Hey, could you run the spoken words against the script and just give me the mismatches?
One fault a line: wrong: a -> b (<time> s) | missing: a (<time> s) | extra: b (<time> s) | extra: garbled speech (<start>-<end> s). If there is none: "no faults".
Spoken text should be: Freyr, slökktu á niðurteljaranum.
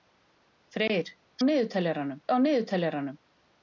wrong: slökktu -> niðurteljaranum (1.5 s)